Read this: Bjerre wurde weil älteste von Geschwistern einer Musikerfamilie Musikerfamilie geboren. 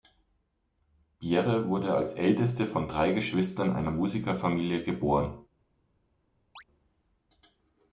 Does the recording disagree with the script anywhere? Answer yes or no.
yes